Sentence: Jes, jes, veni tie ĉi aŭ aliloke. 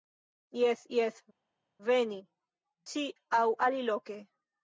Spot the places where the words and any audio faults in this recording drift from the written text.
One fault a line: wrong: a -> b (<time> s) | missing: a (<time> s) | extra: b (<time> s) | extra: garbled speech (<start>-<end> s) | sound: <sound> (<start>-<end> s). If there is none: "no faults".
missing: tie (2.2 s)